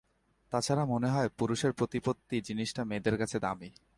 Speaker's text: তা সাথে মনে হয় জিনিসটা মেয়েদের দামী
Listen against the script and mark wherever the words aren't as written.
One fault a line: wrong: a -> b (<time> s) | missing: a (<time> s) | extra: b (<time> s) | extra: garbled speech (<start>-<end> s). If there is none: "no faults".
wrong: সাথে -> ছাড়া (0.6 s)
extra: পুরুষের প্রতিপত্তি (1.4 s)
extra: কাছে (3.2 s)